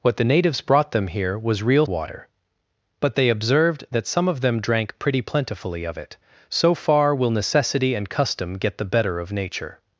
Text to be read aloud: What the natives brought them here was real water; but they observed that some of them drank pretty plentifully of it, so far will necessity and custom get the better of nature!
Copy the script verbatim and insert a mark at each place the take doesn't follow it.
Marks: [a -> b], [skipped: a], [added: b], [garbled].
What the natives brought them here was real water; but they observed that some of them drank pretty plentifully of it, so far will necessity and custom get the better of nature!